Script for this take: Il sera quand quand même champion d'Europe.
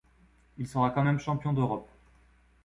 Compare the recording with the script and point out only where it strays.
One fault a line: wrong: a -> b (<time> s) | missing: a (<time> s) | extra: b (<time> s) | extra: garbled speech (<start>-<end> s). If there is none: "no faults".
missing: quand (1.0 s)